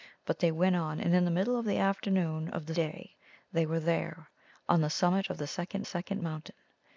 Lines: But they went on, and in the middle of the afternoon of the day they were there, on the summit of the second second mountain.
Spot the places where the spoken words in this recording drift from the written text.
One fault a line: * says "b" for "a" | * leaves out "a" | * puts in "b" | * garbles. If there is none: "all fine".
all fine